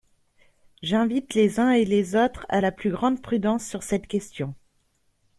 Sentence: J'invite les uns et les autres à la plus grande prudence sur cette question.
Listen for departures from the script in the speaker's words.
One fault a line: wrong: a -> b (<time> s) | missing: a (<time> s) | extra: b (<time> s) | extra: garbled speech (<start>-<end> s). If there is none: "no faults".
no faults